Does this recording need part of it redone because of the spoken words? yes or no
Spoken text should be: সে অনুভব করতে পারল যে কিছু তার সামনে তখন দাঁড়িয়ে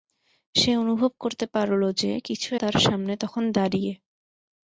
no